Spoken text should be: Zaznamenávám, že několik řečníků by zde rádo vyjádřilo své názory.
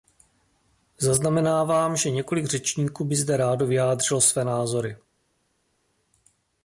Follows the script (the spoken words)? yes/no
yes